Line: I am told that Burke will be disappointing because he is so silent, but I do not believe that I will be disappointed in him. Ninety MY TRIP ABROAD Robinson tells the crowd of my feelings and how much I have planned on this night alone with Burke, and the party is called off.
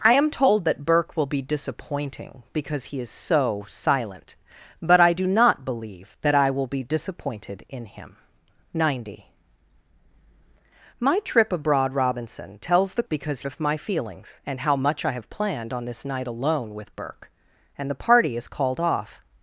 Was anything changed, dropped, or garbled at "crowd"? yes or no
yes